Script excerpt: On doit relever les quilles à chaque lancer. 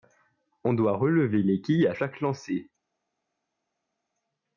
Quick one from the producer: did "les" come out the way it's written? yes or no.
yes